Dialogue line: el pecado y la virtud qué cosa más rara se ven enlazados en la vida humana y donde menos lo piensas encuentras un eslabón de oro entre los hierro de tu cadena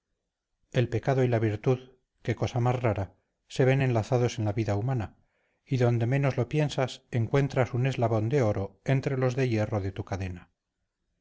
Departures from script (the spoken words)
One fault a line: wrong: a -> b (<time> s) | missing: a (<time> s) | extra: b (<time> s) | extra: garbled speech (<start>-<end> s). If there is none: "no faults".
extra: de (9.4 s)